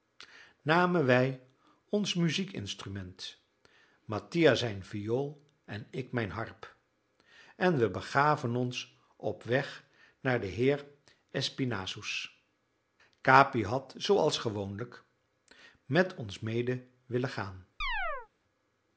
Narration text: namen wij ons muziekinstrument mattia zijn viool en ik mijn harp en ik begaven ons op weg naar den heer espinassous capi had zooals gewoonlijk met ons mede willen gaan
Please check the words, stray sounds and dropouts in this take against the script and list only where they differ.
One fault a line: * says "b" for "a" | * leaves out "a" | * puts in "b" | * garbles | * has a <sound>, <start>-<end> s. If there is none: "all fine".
* says "we" for "ik"
* has a chirp, 17.8-18.3 s